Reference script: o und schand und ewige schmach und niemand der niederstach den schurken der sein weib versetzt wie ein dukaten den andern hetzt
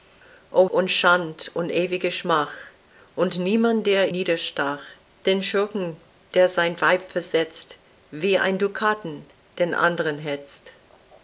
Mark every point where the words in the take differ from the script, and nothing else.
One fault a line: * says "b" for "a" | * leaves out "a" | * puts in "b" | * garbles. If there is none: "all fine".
all fine